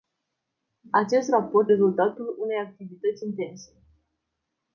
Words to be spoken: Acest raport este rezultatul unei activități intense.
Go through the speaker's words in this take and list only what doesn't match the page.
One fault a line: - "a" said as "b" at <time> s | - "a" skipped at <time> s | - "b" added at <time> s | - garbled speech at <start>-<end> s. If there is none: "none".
- "este" skipped at 1.7 s